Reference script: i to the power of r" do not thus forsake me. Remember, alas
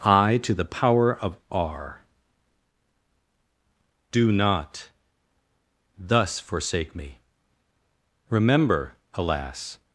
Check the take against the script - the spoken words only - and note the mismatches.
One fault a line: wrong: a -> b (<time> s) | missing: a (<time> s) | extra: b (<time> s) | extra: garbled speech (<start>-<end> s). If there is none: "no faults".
no faults